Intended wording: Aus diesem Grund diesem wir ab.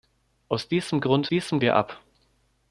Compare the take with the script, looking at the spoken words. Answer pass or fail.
pass